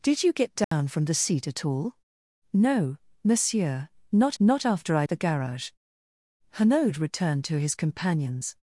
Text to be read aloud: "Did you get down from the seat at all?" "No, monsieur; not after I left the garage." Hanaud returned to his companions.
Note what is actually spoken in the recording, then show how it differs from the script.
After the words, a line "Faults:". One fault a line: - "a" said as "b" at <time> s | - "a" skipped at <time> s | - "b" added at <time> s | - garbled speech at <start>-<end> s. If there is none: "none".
"Did you get down from the seat at all?" "No, monsieur; not not after I the garage." Hanaud returned to his companions.
Faults:
- "not" added at 4.4 s
- "left" skipped at 5.1 s